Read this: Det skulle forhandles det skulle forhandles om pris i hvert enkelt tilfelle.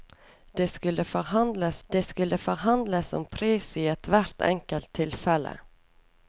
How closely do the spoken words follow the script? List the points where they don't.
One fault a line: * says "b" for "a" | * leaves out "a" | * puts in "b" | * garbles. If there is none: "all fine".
all fine